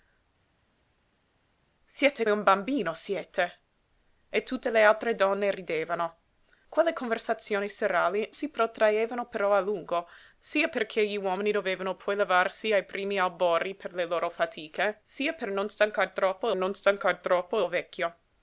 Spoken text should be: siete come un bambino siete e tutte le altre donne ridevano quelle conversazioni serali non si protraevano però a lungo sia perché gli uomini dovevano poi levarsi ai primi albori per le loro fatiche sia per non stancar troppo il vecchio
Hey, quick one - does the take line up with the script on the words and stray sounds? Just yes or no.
no